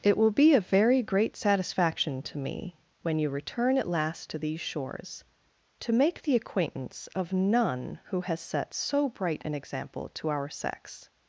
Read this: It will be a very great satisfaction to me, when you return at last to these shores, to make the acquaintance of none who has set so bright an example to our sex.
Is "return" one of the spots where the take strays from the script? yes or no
no